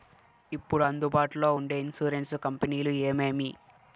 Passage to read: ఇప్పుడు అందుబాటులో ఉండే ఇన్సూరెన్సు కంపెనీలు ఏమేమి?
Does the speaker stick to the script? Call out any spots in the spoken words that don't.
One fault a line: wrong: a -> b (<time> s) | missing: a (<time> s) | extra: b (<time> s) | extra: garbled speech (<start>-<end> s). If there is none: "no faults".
no faults